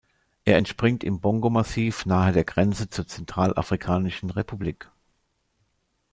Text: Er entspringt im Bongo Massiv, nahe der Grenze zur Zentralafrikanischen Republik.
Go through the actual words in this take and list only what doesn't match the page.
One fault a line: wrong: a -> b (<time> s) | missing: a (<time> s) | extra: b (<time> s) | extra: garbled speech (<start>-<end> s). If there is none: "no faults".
no faults